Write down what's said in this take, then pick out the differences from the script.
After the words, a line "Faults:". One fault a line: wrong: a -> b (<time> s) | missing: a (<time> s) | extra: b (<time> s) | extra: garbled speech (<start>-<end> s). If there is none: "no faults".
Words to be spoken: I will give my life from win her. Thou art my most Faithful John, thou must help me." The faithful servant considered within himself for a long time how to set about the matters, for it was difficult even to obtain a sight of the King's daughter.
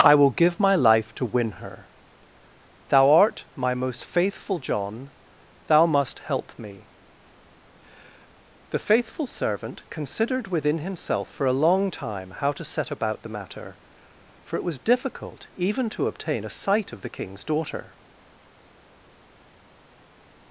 I will give my life to win her. Thou art my most Faithful John, thou must help me." The faithful servant considered within himself for a long time how to set about the matter, for it was difficult even to obtain a sight of the King's daughter.
Faults:
wrong: from -> to (1.1 s)
wrong: matters -> matter (13.3 s)